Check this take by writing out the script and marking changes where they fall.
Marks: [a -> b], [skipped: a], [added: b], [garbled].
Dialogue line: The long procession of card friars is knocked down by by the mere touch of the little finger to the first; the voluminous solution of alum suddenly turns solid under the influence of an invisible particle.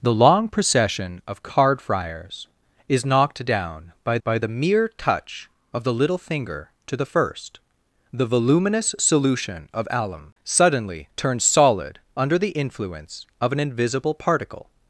The long procession of card friars is knocked down by by the mere touch of the little finger to the first; the voluminous solution of alum suddenly turns solid under the influence of an invisible particle.